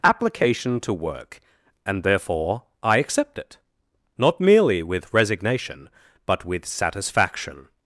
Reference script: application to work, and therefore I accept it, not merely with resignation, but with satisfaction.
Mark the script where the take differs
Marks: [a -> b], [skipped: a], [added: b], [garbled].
application to work, and therefore I accept it, not merely with resignation, but with satisfaction.